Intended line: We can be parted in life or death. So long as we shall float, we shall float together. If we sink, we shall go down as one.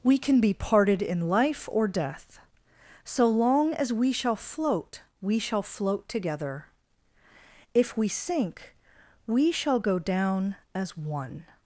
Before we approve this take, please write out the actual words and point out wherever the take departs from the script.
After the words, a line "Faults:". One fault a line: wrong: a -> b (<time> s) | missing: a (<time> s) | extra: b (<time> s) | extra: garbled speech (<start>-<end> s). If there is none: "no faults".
We can be parted in life or death. So long as we shall float, we shall float together. If we sink, we shall go down as one.
Faults:
no faults